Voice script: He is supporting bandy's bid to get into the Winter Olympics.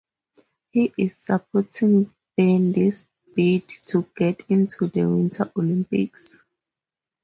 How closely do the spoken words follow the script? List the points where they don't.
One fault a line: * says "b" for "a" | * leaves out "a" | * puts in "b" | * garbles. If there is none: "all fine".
all fine